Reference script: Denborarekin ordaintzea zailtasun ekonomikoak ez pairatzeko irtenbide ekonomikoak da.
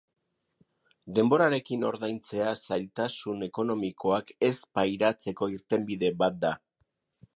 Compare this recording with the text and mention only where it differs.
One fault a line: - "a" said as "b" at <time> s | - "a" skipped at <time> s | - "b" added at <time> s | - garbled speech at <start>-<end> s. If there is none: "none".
- "ekonomikoak" said as "bat" at 6.2 s